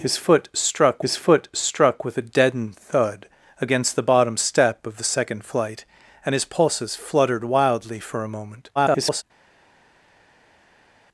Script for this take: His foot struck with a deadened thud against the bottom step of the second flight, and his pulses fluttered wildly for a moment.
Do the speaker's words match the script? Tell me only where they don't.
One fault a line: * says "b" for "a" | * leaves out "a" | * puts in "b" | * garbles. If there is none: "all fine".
* puts in "his foot struck"
* garbles